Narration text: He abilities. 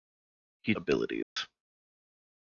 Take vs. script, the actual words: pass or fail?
pass